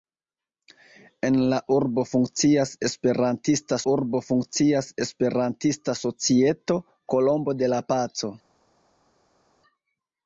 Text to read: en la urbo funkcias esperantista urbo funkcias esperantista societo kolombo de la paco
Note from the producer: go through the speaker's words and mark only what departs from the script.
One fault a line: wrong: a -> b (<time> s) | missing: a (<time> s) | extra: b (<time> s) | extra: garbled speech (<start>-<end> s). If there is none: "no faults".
no faults